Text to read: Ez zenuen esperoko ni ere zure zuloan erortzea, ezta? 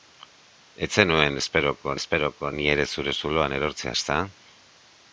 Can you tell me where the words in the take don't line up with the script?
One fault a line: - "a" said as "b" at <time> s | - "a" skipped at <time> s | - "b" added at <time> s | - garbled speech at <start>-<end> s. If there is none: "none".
- "esperoko" added at 2.0 s